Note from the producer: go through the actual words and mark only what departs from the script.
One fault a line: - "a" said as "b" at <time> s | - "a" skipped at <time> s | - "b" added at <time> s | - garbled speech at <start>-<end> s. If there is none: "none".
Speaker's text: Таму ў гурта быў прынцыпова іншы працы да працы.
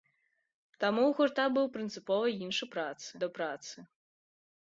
none